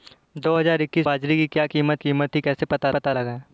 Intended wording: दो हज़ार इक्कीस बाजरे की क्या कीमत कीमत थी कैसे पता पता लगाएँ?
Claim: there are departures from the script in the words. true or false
false